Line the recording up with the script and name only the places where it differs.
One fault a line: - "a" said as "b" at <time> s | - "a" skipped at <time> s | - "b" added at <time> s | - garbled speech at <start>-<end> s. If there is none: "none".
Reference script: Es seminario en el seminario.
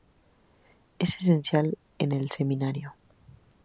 - "seminario" said as "esencial" at 1.2 s